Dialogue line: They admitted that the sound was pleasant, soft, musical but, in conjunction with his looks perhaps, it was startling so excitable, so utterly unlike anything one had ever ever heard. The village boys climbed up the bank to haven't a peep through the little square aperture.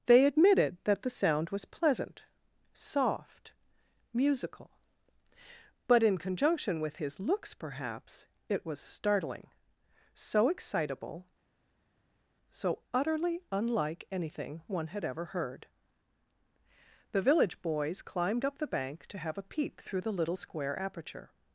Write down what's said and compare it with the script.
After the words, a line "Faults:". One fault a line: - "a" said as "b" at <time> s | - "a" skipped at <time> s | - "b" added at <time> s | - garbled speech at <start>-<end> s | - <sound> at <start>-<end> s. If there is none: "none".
They admitted that the sound was pleasant, soft, musical but, in conjunction with his looks perhaps, it was startling so excitable, so utterly unlike anything one had ever heard. The village boys climbed up the bank to have a peep through the little square aperture.
Faults:
- "ever" skipped at 15.2 s
- "haven't" said as "have" at 19.2 s